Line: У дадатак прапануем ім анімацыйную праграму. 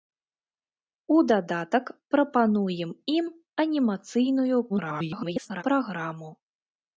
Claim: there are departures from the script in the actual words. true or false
true